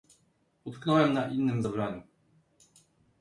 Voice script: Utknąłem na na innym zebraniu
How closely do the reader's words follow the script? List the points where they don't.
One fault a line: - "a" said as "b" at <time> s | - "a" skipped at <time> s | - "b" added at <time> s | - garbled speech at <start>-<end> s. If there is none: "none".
- "na" skipped at 1.3 s